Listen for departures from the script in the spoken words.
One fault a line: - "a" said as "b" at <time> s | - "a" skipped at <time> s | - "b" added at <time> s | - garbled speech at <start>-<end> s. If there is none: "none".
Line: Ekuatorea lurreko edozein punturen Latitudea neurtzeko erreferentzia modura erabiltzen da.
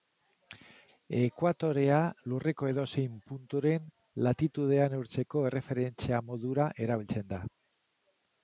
none